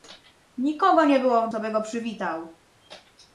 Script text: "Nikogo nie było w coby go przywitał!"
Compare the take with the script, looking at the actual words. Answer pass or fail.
pass